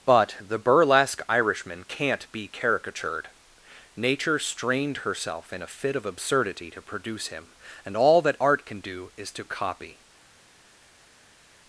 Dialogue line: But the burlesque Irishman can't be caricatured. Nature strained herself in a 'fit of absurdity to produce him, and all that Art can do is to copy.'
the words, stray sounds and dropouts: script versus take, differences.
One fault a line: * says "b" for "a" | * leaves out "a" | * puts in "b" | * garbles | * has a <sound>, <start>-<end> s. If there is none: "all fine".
all fine